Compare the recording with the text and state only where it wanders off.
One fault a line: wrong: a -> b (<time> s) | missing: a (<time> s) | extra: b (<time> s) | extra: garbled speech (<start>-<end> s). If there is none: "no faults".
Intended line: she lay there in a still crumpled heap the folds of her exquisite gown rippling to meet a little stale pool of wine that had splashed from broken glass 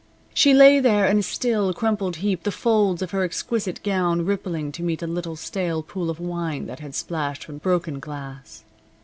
no faults